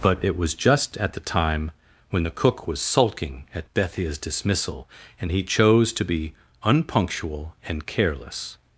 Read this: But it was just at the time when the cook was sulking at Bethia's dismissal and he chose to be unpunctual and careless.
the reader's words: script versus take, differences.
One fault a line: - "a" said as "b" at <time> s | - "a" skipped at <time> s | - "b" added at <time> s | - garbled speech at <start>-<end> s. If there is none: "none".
none